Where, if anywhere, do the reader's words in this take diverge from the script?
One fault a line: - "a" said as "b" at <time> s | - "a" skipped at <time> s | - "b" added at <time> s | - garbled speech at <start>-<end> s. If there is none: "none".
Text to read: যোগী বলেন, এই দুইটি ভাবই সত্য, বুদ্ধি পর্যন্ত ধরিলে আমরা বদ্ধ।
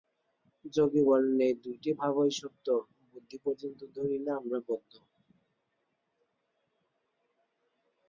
none